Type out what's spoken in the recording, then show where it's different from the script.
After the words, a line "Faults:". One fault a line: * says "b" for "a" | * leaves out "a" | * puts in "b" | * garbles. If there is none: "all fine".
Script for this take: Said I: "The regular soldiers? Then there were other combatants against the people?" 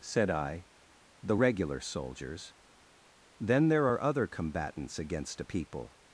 Said I: "The regular soldiers? Then there are other combatants against a people?"
Faults:
* says "are" for "were"
* says "a" for "the"